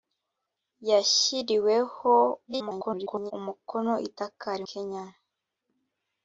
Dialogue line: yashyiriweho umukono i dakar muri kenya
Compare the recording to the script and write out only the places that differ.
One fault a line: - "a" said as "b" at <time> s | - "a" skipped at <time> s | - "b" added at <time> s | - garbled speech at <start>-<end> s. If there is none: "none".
- garbled speech at 2.5-3.3 s
- "muri" skipped at 4.6 s